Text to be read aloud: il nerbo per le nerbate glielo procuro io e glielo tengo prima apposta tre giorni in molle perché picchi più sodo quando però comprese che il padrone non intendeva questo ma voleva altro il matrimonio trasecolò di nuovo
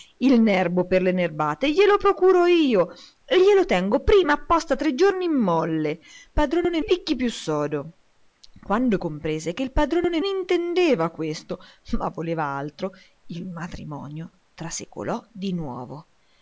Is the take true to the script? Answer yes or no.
no